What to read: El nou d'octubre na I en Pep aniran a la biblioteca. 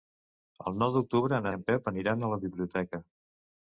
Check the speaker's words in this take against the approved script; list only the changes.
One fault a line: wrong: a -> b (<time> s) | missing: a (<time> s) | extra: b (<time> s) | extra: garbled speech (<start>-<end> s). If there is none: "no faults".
no faults